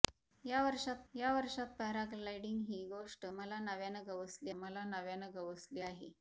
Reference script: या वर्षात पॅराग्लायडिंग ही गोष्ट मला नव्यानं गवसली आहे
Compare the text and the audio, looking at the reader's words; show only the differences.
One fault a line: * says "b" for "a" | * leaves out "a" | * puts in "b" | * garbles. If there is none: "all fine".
* puts in "या वर्षात"
* puts in "मला नव्यानं गवसली"